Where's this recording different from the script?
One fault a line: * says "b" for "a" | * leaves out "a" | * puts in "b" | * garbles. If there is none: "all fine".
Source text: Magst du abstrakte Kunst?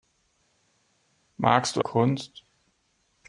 * leaves out "abstrakte"